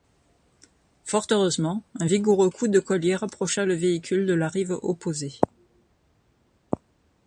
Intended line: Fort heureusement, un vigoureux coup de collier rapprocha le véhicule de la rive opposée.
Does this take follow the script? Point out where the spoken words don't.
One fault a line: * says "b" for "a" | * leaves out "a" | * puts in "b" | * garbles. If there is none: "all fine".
all fine